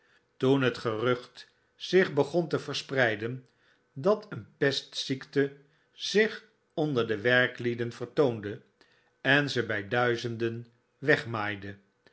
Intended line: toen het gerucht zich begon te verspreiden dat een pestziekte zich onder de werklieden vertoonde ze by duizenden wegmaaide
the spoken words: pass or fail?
fail